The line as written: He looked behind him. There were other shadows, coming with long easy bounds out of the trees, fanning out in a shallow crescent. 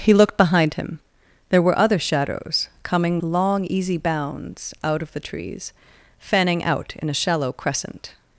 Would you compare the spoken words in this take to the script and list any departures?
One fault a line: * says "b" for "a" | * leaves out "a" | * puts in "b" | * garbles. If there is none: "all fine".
* leaves out "with"